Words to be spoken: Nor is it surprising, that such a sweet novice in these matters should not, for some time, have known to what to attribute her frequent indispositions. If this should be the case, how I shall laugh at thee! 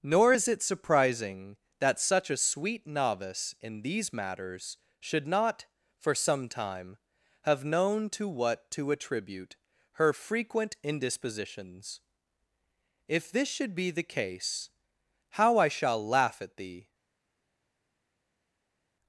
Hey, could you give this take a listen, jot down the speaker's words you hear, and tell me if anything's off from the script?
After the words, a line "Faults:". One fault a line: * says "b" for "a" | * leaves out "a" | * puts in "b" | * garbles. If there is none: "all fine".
Nor is it surprising, that such a sweet novice in these matters should not, for some time, have known to what to attribute her frequent indispositions. If this should be the case, how I shall laugh at thee!
Faults:
all fine